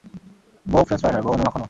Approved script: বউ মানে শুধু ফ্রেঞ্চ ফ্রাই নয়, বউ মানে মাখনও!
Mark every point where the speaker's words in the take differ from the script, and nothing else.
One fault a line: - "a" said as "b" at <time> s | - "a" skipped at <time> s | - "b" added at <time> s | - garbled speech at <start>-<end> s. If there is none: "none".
- "মানে শুধু" skipped at 0.8 s